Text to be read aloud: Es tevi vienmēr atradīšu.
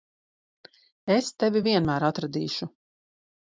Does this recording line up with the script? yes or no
yes